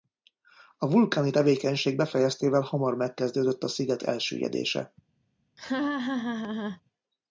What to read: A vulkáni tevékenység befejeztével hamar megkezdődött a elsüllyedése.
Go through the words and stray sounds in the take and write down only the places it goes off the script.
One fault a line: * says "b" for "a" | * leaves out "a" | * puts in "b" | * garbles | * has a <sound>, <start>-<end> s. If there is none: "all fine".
* puts in "sziget"
* has a laugh, 5.6-6.8 s